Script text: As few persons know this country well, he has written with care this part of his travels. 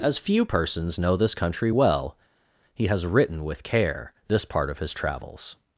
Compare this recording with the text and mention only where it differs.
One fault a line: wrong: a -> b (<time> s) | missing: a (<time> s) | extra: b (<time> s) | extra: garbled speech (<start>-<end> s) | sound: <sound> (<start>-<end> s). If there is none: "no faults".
no faults